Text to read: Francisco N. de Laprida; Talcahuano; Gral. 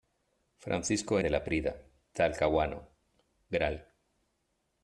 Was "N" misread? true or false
true